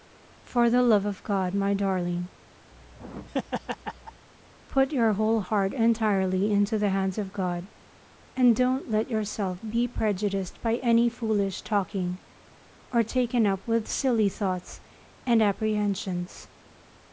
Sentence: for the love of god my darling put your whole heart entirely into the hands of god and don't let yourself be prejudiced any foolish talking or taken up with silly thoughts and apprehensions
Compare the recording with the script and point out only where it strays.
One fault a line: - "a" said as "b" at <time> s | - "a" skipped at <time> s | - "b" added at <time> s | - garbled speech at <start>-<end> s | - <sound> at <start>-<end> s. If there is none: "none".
- laugh at 2.7-4.3 s
- "by" added at 10.6 s